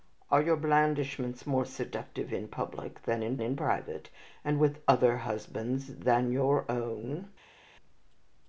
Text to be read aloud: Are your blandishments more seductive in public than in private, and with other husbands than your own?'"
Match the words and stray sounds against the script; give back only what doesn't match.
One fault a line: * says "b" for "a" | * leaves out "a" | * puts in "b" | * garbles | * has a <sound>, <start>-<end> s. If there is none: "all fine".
* puts in "in"